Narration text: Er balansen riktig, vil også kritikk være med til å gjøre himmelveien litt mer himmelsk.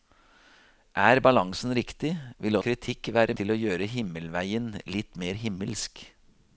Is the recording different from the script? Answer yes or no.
yes